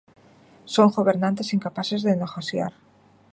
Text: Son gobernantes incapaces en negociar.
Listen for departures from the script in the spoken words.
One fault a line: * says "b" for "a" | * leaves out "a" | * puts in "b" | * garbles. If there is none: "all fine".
* says "de" for "en"